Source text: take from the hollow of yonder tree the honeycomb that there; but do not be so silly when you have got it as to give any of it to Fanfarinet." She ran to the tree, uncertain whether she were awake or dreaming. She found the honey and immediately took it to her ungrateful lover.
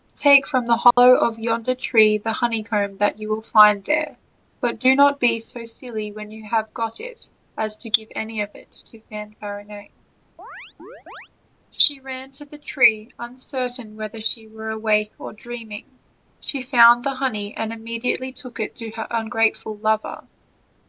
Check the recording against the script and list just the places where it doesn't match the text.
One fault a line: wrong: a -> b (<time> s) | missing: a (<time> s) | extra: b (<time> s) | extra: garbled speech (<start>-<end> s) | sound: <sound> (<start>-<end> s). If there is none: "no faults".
sound: dropout (0.9-1.0 s)
extra: you will find (3.2 s)
sound: chirp (10.4-11.3 s)